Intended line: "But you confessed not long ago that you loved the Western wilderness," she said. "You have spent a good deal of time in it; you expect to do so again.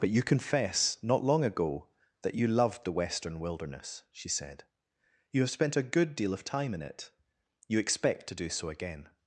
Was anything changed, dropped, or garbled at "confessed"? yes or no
yes